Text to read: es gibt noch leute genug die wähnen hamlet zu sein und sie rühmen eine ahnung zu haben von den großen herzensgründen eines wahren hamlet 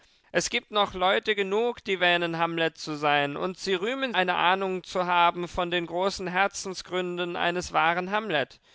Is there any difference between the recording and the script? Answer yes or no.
no